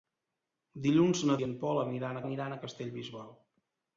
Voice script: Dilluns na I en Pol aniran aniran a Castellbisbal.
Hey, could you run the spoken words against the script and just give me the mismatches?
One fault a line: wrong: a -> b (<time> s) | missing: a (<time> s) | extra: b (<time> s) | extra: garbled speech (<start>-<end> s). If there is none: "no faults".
no faults